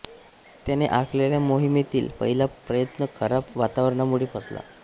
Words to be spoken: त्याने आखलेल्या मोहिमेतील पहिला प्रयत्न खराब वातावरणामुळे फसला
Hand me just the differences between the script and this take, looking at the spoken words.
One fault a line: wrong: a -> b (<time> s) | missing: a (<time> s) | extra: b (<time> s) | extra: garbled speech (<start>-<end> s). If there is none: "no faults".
no faults